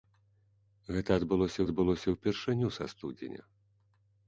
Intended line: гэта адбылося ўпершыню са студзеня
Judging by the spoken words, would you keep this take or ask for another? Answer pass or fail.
fail